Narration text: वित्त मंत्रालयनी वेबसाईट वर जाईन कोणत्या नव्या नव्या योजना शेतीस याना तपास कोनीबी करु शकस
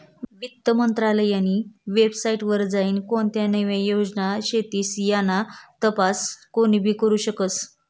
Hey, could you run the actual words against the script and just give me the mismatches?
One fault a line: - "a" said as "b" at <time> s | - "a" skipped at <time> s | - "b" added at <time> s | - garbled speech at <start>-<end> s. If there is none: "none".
- "नव्या" skipped at 3.8 s